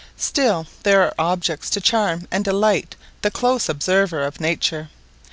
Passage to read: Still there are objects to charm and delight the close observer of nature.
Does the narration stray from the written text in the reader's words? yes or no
no